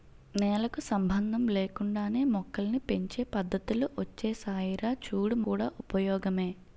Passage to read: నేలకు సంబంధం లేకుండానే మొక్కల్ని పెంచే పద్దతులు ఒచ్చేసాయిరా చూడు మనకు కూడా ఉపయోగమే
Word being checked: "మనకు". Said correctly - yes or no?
no